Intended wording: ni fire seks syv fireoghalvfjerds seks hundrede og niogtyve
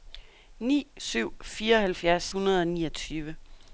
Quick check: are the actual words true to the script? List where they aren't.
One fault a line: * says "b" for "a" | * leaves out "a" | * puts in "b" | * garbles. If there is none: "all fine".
* leaves out "fire seks"
* leaves out "seks"